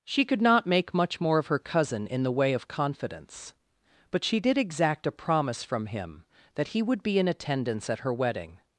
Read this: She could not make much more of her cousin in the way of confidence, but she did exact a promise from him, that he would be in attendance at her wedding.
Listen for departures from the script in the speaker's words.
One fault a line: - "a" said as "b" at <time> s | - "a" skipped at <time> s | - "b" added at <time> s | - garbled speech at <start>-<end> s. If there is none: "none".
none